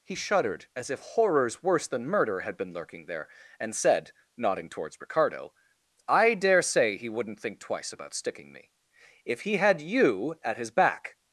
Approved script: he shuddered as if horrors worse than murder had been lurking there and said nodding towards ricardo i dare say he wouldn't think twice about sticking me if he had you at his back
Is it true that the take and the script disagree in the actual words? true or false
false